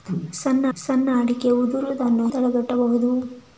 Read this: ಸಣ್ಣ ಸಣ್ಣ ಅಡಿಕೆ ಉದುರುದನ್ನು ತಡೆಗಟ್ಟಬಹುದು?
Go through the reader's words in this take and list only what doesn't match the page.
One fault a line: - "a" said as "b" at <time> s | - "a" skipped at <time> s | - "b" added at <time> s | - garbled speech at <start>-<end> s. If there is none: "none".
none